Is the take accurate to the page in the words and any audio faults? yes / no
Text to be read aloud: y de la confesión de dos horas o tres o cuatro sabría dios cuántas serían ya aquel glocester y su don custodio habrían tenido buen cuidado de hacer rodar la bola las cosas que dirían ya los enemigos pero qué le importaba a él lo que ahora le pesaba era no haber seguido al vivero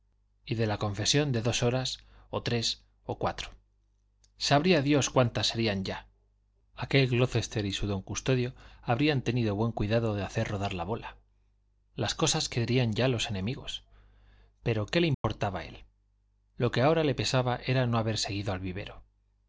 no